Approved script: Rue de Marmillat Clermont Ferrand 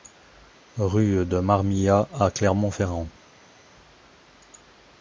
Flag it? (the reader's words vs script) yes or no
yes